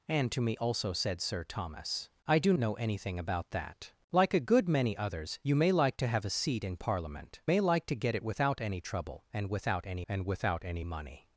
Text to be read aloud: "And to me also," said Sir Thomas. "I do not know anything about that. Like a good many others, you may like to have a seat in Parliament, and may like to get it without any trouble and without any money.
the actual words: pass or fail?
fail